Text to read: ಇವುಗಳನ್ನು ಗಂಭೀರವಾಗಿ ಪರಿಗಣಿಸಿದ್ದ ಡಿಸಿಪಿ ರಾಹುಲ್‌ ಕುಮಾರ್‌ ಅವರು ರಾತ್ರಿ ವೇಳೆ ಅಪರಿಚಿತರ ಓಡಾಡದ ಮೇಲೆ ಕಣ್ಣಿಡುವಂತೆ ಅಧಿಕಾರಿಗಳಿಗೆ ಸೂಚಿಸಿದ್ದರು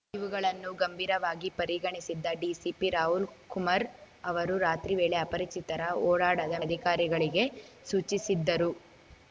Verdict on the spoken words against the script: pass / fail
fail